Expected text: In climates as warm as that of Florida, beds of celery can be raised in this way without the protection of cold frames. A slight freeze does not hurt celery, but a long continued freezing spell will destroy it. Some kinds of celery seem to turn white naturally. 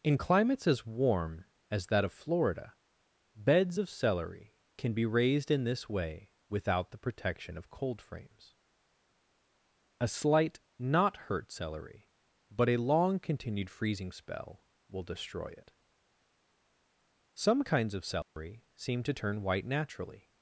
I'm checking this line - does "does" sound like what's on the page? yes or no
no